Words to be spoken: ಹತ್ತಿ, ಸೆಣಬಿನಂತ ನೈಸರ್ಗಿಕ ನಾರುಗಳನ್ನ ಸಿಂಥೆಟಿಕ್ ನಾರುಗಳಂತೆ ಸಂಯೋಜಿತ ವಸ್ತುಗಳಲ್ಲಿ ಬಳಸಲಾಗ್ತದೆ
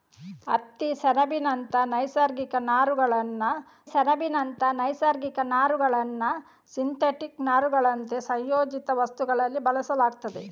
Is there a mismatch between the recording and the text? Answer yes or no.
yes